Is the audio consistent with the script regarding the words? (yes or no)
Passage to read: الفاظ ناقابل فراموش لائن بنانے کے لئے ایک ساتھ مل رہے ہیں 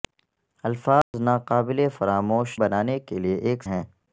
no